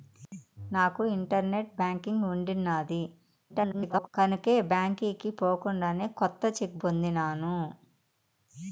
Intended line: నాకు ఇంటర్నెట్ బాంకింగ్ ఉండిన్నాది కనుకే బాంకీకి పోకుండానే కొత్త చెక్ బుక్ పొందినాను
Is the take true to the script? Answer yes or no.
no